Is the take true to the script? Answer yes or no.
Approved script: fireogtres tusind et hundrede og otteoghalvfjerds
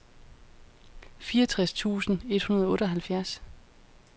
yes